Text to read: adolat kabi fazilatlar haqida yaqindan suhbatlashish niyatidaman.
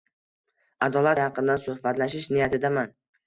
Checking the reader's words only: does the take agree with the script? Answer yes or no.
no